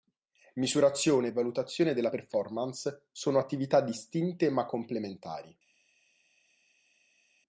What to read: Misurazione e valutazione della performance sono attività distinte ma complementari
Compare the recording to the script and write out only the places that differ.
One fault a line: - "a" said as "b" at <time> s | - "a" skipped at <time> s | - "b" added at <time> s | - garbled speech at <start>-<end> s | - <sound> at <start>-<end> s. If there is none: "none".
none